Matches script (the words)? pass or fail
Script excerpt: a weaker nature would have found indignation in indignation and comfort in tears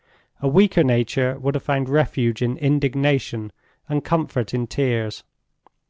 fail